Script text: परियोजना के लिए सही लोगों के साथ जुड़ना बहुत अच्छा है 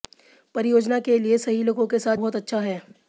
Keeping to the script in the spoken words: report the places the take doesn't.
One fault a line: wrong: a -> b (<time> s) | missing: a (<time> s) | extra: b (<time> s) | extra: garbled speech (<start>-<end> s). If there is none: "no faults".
missing: जुड़ना (2.2 s)